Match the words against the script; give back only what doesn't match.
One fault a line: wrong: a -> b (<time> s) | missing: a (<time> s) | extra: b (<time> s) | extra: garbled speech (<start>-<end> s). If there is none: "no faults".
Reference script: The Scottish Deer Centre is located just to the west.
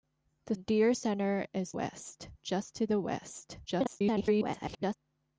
missing: Scottish (0.6 s)
wrong: located -> west (1.7 s)
extra: garbled speech (3.7-5.0 s)